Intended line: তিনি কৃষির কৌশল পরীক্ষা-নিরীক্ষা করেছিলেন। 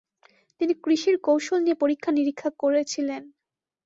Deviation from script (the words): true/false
true